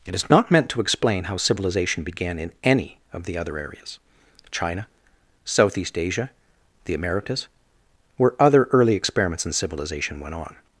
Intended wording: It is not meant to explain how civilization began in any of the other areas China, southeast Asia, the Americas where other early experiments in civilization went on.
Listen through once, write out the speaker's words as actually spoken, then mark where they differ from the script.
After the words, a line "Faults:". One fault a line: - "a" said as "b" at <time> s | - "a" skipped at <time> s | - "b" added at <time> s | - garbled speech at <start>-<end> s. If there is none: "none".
It is not meant to explain how civilization began in any of the other areas China, southeast Asia, the Americas where other early experiments in civilization went on.
Faults:
none